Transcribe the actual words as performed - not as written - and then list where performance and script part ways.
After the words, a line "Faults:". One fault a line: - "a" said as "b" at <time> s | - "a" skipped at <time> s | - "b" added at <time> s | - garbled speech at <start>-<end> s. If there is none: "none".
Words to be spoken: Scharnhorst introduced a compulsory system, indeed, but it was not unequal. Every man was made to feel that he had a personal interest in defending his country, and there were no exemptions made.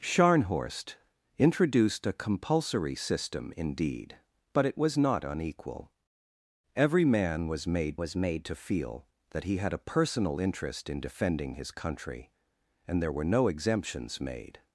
Scharnhorst introduced a compulsory system, indeed, but it was not unequal. Every man was made was made to feel that he had a personal interest in defending his country, and there were no exemptions made.
Faults:
- "was made" added at 8.0 s